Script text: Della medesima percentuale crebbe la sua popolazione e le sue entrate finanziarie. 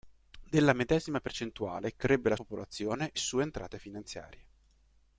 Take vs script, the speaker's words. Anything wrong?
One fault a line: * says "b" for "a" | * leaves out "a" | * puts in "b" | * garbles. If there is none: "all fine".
* leaves out "sua"
* leaves out "le"